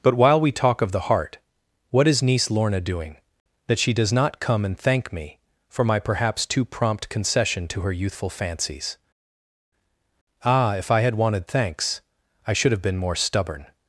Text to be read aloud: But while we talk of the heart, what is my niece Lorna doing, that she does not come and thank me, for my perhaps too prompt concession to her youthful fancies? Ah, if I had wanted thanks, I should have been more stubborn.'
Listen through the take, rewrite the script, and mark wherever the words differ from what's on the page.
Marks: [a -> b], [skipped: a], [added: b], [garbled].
But while we talk of the heart, what is [skipped: my] niece Lorna doing, that she does not come and thank me, for my perhaps too prompt concession to her youthful fancies? Ah, if I had wanted thanks, I should have been more stubborn.'